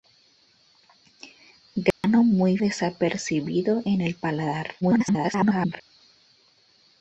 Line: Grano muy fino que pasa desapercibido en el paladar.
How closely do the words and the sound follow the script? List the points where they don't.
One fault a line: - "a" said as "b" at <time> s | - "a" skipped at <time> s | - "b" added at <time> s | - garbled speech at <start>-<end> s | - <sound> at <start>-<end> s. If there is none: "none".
- dropout at 1.9-2.0 s
- "fino que pasa" skipped at 2.6 s
- garbled speech at 4.8-5.8 s